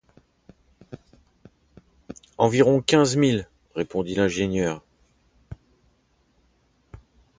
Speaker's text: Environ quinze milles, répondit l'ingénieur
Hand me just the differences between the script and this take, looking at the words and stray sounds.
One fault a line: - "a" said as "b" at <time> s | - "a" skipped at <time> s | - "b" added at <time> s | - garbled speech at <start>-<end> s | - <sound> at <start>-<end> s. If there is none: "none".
none